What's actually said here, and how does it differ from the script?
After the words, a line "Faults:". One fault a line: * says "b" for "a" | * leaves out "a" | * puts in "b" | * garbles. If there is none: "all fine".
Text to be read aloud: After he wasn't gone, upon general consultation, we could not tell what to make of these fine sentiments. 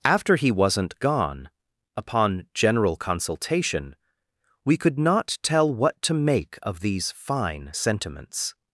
After he wasn't gone, upon general consultation, we could not tell what to make of these fine sentiments.
Faults:
all fine